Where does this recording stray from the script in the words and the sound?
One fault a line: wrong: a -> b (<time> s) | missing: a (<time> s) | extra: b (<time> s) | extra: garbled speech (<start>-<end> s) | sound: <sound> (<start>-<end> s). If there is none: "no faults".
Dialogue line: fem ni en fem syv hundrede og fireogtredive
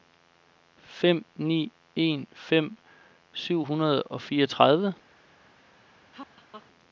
sound: laugh (6.1-6.7 s)